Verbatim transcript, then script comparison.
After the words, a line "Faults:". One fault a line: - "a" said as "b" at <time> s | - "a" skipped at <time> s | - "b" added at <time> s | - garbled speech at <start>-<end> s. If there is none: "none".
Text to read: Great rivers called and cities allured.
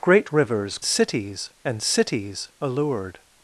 Great rivers cities and cities allured.
Faults:
- "called" said as "cities" at 0.8 s